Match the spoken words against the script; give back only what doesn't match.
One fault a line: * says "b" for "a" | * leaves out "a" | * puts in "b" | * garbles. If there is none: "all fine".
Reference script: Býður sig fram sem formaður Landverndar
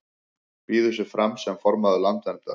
all fine